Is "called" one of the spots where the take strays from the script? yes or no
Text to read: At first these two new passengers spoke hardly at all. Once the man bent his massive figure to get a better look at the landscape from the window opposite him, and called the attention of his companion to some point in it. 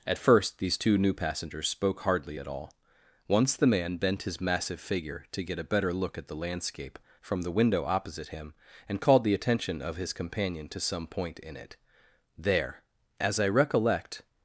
no